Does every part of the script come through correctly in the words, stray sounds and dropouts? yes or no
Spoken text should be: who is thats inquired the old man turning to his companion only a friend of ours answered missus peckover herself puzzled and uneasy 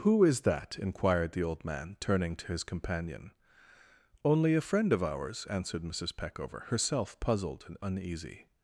no